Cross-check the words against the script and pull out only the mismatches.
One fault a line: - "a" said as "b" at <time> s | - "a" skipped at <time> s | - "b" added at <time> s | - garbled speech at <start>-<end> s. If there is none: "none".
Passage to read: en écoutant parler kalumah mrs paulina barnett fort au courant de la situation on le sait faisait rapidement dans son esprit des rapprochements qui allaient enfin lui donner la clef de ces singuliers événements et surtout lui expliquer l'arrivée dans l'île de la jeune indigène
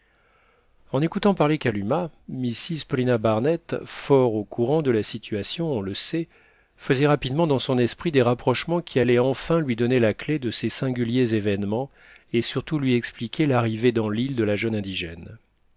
none